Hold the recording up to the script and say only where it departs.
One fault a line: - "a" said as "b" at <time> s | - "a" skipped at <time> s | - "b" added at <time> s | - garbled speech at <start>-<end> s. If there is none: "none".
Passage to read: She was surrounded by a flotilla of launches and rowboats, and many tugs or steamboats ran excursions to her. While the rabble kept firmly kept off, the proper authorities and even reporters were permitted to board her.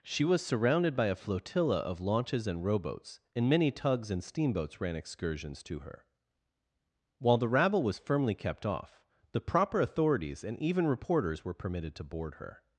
- "or" said as "and" at 4.1 s
- "kept" said as "was" at 7.8 s